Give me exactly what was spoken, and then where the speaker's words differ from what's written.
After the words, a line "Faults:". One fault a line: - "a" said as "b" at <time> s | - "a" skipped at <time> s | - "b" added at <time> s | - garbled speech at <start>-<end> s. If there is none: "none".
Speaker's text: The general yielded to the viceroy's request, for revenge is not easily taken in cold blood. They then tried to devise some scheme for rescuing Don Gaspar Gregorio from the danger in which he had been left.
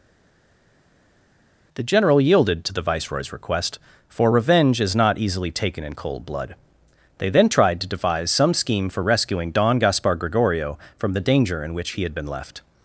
The general yielded to the viceroy's request, for revenge is not easily taken in cold blood. They then tried to devise some scheme for rescuing Don Gaspar Gregorio from the danger in which he had been left.
Faults:
none